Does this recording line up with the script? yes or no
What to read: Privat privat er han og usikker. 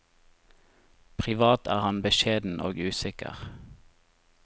no